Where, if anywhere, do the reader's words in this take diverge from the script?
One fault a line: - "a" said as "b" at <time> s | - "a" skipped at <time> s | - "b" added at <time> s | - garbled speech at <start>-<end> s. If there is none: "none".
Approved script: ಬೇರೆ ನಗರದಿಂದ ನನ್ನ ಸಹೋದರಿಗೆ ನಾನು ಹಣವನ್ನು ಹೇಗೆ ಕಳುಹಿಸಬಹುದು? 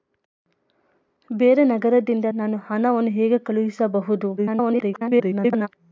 - "ನನ್ನ ಸಹೋದರಿಗೆ" skipped at 2.2 s
- garbled speech at 4.4-5.7 s